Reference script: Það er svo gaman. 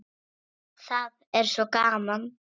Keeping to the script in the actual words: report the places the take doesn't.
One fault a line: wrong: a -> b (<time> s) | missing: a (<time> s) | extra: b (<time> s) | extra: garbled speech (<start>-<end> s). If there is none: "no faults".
no faults